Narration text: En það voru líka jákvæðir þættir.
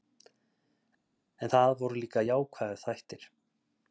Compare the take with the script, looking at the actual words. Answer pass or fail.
pass